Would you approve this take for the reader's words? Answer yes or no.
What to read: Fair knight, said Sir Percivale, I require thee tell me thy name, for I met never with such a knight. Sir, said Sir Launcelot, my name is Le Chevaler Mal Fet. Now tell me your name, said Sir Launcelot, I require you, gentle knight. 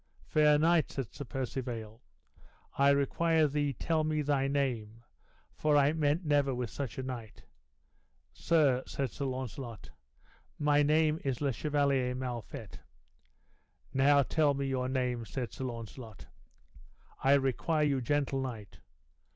yes